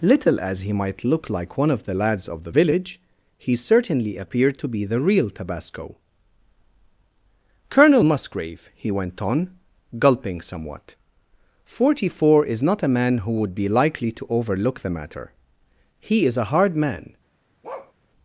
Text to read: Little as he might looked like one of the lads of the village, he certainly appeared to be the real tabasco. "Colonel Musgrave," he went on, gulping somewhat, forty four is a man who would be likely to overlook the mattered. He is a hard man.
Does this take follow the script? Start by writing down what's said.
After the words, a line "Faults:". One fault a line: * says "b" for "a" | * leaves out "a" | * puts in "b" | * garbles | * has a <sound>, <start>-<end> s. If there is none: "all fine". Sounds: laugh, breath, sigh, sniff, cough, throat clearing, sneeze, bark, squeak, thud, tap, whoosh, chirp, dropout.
Little as he might look like one of the lads of the village, he certainly appeared to be the real tabasco. "Colonel Musgrave," he went on, gulping somewhat, forty four is not a man who would be likely to overlook the matter. He is a hard man.
Faults:
* says "look" for "looked"
* puts in "not"
* says "matter" for "mattered"
* has a bark, 17.6-17.9 s